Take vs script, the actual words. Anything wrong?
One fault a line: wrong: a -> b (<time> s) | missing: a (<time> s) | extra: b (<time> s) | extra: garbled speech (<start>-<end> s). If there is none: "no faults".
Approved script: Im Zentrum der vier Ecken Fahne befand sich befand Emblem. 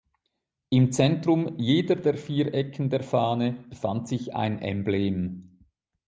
extra: jeder (1.6 s)
extra: der (2.9 s)
wrong: befand -> ein (4.3 s)